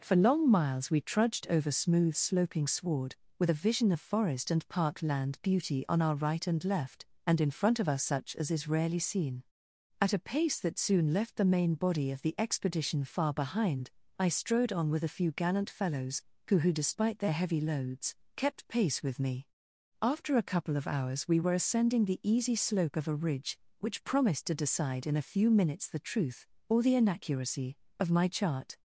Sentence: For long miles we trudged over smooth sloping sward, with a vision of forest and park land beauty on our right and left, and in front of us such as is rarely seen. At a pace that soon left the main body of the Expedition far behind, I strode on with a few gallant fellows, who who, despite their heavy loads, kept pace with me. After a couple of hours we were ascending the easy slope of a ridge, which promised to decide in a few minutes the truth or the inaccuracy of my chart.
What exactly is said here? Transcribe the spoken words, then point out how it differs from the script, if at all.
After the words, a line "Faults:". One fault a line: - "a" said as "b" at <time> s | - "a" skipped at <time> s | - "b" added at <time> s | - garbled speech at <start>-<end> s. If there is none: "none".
For long miles we trudged over smooth sloping sward, with a vision of forest and park land beauty on our right and left, and in front of us such as is rarely seen. At a pace that soon left the main body of the Expedition far behind, I strode on with a few gallant fellows, who who, despite their heavy loads, kept pace with me. After a couple of hours we were ascending the easy slope of a ridge, which promised to decide in a few minutes the truth or the inaccuracy of my chart.
Faults:
none